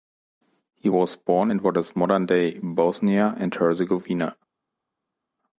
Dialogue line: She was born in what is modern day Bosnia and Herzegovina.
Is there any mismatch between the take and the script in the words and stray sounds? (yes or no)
yes